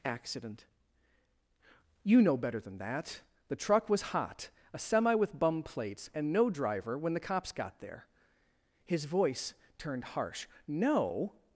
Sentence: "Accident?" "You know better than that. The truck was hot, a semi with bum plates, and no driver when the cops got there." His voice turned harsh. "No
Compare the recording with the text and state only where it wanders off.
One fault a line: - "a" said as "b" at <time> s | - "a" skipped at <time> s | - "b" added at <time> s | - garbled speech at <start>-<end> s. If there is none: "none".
none